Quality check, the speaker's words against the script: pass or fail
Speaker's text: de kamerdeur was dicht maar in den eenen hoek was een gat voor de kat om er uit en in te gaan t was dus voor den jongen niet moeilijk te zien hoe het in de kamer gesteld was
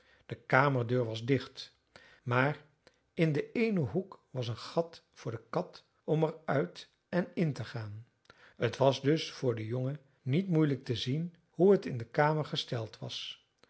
pass